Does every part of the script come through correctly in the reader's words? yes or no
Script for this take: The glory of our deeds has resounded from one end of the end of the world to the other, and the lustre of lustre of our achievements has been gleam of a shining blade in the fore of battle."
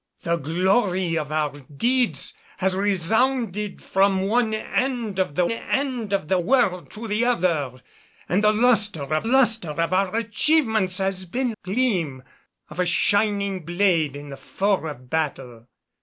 yes